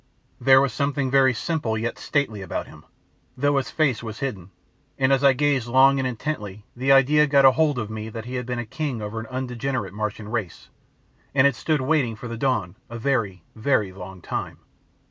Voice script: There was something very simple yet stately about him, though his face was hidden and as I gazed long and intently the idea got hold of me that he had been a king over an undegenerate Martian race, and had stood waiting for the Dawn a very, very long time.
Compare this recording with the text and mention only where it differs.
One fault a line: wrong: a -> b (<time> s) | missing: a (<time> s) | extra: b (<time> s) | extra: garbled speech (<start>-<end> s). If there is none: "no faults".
no faults